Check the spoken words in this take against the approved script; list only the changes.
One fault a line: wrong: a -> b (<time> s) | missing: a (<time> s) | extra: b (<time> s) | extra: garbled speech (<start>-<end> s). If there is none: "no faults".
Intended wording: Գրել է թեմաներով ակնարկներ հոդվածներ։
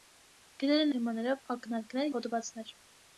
no faults